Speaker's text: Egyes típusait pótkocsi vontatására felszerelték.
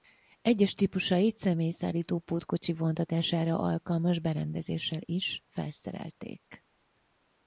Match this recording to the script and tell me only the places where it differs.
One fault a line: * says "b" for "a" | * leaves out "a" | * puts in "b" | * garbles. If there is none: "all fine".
* puts in "személyszállító"
* puts in "alkalmas berendezéssel is"